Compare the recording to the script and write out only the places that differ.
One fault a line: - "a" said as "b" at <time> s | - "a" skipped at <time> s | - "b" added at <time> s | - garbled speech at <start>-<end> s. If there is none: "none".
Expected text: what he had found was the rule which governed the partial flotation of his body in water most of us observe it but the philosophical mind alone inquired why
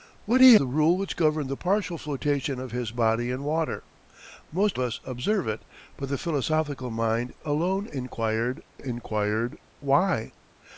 - "had found was" skipped at 0.6 s
- "of" skipped at 4.8 s
- "inquired" added at 8.8 s